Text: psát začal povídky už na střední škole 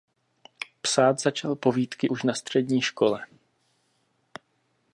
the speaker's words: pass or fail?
pass